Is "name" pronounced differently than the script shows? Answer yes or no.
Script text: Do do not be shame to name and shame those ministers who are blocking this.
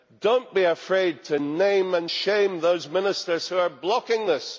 no